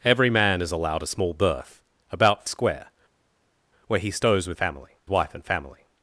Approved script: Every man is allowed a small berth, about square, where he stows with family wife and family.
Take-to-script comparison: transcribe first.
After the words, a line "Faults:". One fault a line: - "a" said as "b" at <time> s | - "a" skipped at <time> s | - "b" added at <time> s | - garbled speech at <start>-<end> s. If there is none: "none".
Every man is allowed a small berth, about square, where he stows with family wife and family.
Faults:
none